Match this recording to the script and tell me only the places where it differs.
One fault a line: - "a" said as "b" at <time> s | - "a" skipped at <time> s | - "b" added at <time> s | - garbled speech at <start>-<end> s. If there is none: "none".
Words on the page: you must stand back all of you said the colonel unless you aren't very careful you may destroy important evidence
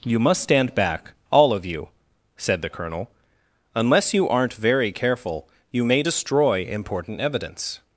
none